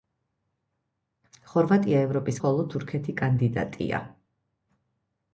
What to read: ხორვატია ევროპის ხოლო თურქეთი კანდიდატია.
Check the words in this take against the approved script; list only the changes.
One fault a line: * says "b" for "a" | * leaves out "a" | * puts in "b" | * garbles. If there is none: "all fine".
all fine